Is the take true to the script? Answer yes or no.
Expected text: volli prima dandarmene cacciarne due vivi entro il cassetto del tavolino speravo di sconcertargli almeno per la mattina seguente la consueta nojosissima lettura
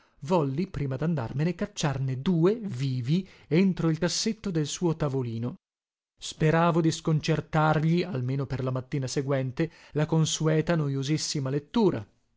no